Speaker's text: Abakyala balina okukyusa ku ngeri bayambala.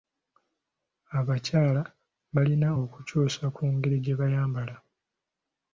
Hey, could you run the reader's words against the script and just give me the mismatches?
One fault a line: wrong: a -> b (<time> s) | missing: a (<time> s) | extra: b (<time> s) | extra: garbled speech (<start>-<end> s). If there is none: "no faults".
extra: gye (4.0 s)